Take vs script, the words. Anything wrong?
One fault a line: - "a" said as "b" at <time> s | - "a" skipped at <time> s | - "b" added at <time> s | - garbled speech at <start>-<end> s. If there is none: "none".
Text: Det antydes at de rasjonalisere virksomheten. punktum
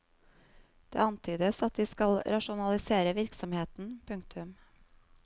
- "skal" added at 1.9 s